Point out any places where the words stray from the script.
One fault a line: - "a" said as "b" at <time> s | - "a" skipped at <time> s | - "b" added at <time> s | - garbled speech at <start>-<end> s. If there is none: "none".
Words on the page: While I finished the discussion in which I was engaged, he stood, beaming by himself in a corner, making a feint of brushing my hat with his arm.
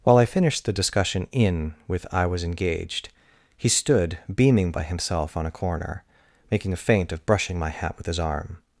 - "which" said as "with" at 1.9 s
- "in" said as "on" at 5.4 s